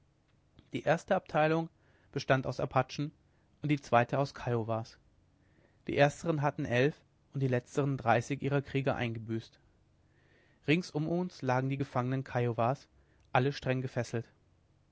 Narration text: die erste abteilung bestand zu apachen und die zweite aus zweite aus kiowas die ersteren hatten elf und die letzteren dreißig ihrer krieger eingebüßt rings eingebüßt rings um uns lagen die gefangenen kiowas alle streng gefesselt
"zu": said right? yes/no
no